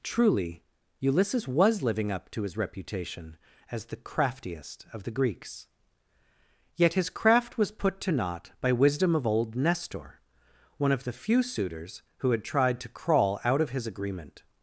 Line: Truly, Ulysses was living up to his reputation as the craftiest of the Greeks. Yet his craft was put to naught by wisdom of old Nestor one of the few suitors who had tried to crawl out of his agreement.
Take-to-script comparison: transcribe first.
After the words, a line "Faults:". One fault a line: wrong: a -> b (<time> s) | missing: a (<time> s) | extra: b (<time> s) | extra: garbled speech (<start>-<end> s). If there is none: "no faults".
Truly, Ulysses was living up to his reputation as the craftiest of the Greeks. Yet his craft was put to naught by wisdom of old Nestor one of the few suitors who had tried to crawl out of his agreement.
Faults:
no faults